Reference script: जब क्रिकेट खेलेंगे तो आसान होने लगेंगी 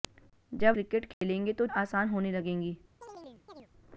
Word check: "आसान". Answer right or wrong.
right